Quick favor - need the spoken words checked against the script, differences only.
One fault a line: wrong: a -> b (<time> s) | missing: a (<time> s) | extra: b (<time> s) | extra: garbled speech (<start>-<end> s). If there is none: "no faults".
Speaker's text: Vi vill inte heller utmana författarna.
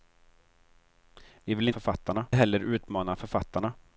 wrong: inte -> författarna (1.7 s)